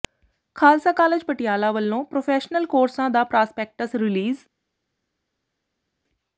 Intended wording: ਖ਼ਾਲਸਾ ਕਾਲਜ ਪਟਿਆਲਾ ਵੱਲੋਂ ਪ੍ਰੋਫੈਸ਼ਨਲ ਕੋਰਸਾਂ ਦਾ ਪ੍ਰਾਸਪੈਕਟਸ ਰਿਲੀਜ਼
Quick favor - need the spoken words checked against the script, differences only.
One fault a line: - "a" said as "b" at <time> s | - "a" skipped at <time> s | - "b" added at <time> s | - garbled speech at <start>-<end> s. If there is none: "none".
none